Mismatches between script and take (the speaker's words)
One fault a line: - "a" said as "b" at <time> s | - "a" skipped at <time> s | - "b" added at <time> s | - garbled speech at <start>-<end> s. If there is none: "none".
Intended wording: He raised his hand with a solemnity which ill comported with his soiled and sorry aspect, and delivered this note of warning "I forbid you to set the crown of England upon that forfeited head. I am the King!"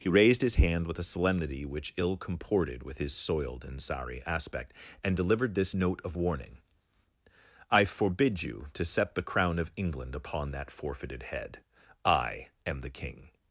none